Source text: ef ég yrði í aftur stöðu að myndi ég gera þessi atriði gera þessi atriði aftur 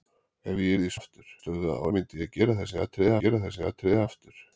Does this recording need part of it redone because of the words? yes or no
no